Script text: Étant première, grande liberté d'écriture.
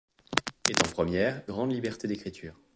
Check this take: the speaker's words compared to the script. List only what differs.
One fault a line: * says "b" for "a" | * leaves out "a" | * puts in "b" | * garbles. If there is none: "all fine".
all fine